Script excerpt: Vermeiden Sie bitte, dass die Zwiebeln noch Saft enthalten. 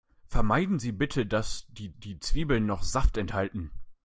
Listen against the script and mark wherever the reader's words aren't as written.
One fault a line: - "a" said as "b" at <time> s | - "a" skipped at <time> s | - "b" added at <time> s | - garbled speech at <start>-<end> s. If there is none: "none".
- "die" added at 1.9 s